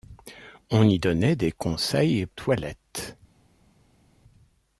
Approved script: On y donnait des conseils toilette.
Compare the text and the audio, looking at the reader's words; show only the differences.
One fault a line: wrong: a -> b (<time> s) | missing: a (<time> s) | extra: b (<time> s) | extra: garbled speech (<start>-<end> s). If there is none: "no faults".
no faults